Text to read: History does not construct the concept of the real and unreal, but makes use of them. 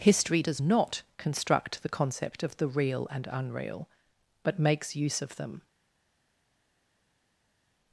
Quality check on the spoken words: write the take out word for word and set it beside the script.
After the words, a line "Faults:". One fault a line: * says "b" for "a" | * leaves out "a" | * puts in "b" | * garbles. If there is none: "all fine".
History does not construct the concept of the real and unreal, but makes use of them.
Faults:
all fine